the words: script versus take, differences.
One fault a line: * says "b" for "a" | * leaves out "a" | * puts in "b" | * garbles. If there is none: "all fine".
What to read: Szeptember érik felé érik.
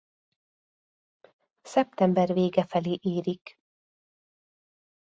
* says "vége" for "érik"